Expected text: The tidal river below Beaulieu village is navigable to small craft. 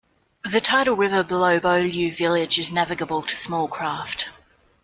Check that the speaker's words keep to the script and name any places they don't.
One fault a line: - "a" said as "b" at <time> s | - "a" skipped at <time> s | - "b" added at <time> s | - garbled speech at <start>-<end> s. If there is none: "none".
none